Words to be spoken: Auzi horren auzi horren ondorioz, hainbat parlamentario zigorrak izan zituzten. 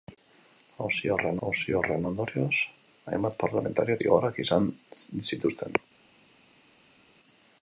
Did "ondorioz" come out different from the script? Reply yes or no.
no